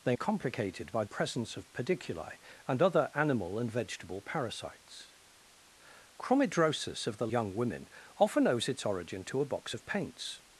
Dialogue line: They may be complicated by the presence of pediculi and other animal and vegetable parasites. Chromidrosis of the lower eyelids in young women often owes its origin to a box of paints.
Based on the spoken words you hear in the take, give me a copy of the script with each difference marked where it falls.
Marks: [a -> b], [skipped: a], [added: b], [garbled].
They [skipped: may be] complicated by [skipped: the] presence of pediculi and other animal and vegetable parasites. Chromidrosis of the [skipped: lower eyelids in] young women often owes its origin to a box of paints.